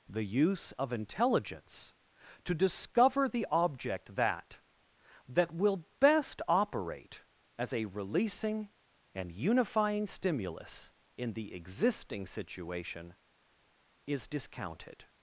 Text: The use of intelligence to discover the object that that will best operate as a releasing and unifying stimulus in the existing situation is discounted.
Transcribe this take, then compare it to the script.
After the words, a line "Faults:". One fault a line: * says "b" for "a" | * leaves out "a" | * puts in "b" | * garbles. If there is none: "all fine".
The use of intelligence to discover the object that that will best operate as a releasing and unifying stimulus in the existing situation is discounted.
Faults:
all fine